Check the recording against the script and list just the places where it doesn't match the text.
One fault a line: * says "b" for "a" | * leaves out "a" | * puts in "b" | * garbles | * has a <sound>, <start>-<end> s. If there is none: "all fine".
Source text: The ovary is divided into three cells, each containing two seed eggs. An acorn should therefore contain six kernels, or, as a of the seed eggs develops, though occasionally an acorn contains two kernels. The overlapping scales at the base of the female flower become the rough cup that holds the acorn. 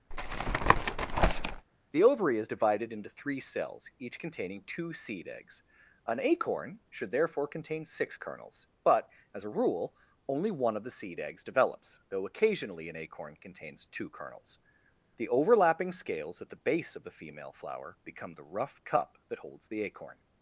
* has a tap, 0.1-1.7 s
* says "but" for "or"
* puts in "rule only one"